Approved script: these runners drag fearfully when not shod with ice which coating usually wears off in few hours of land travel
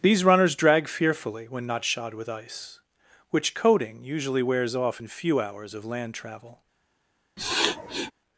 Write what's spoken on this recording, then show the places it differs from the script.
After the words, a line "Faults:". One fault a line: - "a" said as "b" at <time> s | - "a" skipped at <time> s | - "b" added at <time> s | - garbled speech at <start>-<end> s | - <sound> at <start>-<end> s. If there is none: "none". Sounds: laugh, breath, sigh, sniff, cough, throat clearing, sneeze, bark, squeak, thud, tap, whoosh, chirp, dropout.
these runners drag fearfully when not shod with ice which coating usually wears off in few hours of land travel
Faults:
- sniff at 7.4-8.1 s